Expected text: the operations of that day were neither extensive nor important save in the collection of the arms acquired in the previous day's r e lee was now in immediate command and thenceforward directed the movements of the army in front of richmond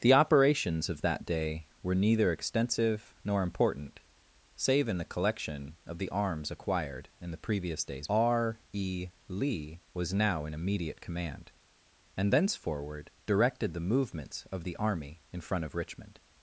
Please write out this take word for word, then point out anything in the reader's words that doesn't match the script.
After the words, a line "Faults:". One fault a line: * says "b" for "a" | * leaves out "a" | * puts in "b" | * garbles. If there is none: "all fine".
the operations of that day were neither extensive nor important save in the collection of the arms acquired in the previous day's r e lee was now in immediate command and thenceforward directed the movements of the army in front of richmond
Faults:
all fine